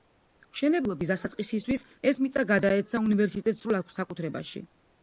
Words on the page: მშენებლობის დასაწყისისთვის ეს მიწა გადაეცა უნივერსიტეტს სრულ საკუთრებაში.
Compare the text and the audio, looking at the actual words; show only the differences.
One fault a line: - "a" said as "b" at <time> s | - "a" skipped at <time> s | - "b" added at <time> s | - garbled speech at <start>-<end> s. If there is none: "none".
none